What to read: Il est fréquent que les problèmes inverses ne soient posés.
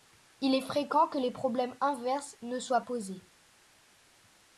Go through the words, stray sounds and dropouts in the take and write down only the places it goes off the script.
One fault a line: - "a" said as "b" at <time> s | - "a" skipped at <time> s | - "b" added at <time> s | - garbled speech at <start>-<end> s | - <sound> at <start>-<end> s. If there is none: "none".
none